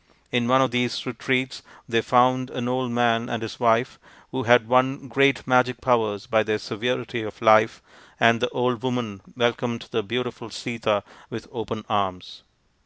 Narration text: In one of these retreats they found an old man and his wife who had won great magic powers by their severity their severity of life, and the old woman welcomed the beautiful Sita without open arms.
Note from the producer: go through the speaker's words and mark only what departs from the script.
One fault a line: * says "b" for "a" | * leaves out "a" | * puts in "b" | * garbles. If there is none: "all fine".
* leaves out "their severity"
* says "with" for "without"